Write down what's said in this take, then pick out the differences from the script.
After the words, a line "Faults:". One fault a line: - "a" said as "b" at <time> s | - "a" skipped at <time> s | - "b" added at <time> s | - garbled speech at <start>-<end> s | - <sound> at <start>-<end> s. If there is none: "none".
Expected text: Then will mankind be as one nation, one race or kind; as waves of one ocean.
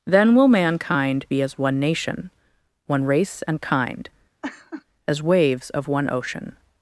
Then will mankind be as one nation, one race and kind; as waves of one ocean.
Faults:
- "or" said as "and" at 3.4 s
- laugh at 4.4-4.8 s